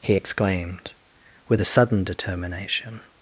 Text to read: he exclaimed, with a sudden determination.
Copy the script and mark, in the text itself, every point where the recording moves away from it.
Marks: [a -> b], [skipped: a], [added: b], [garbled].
he exclaimed, with a sudden determination.